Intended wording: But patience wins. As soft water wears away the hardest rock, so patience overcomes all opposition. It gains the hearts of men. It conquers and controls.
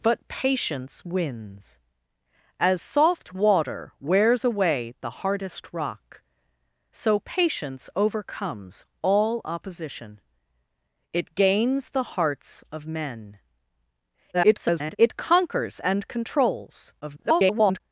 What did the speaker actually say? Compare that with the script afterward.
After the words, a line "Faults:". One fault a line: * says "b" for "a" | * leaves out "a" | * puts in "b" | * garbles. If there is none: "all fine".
But patience wins. As soft water wears away the hardest rock, so patience overcomes all opposition. It gains the hearts of men. [garbled] It conquers and controls. [garbled]
Faults:
* garbles
* garbles